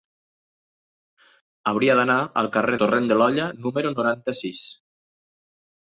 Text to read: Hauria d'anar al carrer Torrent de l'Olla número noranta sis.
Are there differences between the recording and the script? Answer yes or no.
no